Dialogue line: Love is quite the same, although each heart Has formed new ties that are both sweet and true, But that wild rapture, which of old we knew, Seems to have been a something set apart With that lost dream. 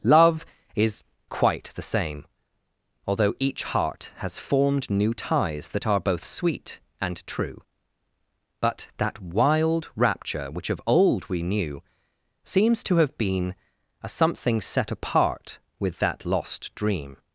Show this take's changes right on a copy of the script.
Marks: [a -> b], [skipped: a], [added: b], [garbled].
Love is quite the same, although each heart Has formed new ties that are both sweet and true, But that wild rapture, which of old we knew, Seems to have been a something set apart With that lost dream.